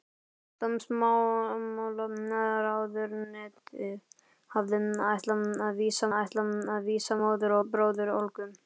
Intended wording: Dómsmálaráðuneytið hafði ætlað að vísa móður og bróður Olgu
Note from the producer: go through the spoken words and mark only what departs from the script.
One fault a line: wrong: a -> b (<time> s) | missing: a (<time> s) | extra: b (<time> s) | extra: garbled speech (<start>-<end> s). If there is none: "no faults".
extra: ætlað að vísa (6.2 s)